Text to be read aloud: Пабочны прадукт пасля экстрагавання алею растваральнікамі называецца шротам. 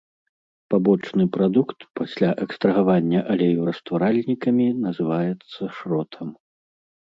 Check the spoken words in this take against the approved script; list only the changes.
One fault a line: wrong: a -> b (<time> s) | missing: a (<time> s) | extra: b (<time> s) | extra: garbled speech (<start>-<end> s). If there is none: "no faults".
no faults